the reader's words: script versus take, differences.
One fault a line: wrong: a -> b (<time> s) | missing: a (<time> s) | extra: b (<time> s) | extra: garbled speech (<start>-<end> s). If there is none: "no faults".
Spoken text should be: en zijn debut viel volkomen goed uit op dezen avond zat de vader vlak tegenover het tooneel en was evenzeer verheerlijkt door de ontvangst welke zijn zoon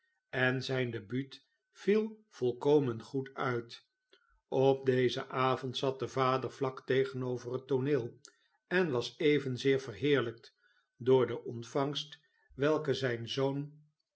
no faults